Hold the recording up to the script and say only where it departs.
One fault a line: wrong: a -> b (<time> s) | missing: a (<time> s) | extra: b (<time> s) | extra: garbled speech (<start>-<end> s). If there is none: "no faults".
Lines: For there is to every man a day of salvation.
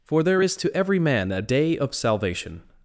no faults